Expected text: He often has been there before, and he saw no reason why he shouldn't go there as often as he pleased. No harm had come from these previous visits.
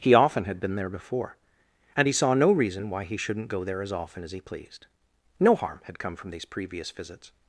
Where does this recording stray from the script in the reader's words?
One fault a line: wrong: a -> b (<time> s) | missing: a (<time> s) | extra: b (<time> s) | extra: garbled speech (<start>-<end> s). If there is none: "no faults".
wrong: has -> had (0.5 s)